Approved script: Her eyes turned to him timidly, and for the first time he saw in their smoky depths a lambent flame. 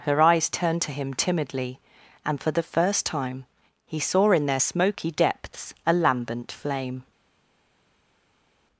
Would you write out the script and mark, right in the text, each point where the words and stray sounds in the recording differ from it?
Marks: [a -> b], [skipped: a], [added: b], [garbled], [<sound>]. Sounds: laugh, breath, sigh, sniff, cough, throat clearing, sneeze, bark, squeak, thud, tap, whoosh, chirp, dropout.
Her eyes turned to him timidly, and for the first time he saw in their smoky depths a lambent flame.